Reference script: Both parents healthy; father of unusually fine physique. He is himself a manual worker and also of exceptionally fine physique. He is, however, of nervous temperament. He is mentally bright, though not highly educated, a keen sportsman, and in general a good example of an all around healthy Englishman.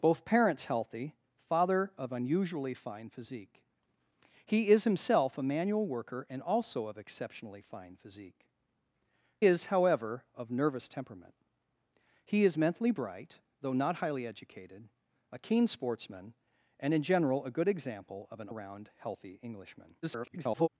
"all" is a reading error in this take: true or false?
true